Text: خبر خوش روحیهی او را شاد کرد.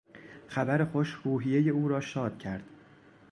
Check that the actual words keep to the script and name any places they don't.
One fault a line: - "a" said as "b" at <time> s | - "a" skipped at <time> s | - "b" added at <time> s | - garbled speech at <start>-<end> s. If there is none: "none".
none